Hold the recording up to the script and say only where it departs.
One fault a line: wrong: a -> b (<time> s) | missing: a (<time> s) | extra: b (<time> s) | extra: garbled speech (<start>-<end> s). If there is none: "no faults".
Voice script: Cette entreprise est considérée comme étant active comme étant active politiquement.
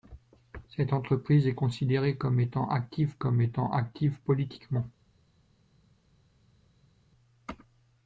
no faults